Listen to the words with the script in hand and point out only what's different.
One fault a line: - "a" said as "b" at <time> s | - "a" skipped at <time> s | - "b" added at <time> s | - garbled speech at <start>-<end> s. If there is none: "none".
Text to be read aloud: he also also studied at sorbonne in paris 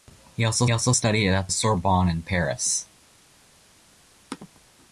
none